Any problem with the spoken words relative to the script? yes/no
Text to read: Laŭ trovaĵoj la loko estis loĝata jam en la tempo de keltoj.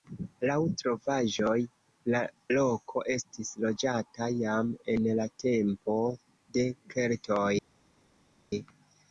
no